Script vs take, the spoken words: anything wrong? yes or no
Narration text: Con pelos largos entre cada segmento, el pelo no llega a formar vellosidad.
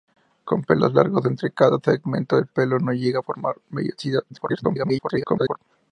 yes